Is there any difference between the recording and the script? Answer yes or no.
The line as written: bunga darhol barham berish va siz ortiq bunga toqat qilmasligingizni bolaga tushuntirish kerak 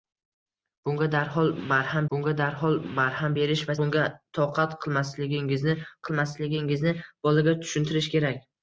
yes